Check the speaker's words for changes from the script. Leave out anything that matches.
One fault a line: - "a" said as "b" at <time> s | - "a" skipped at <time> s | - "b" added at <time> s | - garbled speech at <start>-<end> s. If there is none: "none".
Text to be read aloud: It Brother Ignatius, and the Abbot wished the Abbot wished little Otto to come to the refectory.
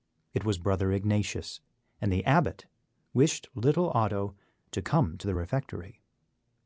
- "was" added at 0.4 s
- "the Abbot wished" skipped at 3.5 s